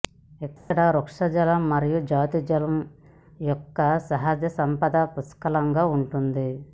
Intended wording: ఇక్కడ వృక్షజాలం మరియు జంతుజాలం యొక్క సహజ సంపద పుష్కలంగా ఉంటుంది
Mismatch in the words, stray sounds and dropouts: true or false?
true